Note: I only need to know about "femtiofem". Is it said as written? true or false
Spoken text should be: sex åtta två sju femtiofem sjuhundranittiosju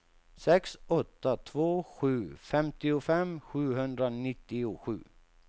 true